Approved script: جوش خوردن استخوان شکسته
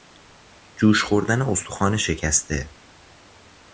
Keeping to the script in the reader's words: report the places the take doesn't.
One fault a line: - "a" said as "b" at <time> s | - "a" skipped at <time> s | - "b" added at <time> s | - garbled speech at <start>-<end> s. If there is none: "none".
none